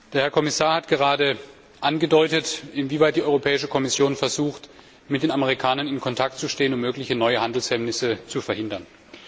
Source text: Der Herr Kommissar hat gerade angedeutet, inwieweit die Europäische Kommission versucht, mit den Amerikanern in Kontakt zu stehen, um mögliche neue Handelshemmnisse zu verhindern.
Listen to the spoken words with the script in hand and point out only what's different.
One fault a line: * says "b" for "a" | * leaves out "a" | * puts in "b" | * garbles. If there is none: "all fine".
all fine